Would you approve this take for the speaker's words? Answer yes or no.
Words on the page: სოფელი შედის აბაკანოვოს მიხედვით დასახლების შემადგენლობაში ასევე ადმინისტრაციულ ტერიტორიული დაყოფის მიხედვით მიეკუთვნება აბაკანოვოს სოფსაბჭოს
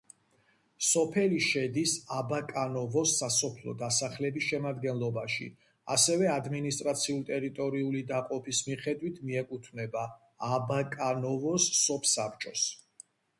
no